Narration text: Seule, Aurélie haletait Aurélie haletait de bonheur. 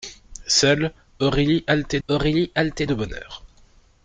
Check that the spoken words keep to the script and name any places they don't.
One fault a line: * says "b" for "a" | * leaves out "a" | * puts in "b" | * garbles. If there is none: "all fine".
all fine